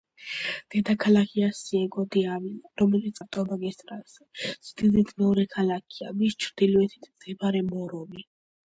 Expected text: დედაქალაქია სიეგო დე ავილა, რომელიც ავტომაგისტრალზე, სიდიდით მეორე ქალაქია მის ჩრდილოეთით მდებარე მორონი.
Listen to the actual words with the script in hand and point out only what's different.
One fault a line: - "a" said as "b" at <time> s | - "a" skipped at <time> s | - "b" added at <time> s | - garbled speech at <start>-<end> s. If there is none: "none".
none